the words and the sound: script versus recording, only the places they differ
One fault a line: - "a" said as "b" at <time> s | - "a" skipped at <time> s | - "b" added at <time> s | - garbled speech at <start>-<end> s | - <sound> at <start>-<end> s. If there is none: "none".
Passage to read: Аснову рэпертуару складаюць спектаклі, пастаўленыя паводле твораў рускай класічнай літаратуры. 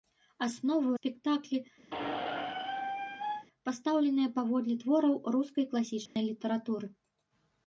- "рэпертуару складаюць" skipped at 0.9 s
- squeak at 1.9-3.5 s
- dropout at 6.1-6.2 s